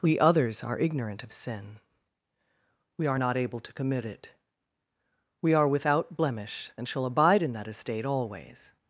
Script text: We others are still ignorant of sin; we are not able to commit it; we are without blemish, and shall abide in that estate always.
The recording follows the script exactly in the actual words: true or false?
false